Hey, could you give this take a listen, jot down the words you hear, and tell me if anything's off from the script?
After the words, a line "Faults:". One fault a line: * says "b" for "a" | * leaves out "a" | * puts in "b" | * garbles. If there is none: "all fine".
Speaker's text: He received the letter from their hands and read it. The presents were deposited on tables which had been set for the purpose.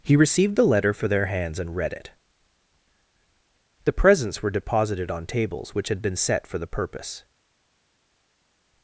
He received the letter for their hands and read it. The presents were deposited on tables which had been set for the purpose.
Faults:
* says "for" for "from"